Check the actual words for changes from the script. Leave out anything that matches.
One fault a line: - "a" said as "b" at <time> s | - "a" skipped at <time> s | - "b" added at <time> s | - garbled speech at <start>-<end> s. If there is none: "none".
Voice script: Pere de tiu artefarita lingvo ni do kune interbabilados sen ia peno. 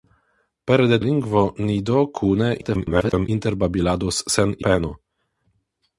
- "tiu artefarita" skipped at 1.0 s
- garbled speech at 2.6-3.3 s
- "ia" skipped at 4.6 s